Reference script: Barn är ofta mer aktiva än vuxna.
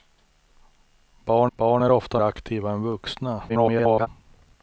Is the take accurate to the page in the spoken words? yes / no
no